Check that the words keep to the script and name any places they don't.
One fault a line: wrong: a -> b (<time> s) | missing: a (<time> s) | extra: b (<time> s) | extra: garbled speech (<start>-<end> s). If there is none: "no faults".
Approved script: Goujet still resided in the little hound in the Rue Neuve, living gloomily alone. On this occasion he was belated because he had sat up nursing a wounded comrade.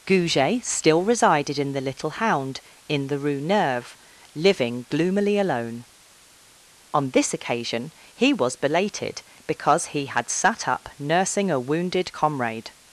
no faults